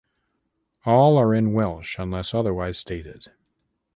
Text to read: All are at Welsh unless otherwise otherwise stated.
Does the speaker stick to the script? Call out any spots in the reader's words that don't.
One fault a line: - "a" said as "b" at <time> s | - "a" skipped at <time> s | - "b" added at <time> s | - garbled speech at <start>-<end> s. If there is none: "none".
- "at" said as "in" at 1.4 s
- "otherwise" skipped at 2.8 s